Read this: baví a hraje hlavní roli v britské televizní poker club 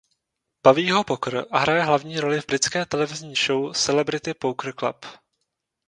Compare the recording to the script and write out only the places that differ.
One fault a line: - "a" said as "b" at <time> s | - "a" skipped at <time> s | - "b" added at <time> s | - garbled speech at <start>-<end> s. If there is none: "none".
- "ho poker" added at 0.9 s
- "show celebrity" added at 3.3 s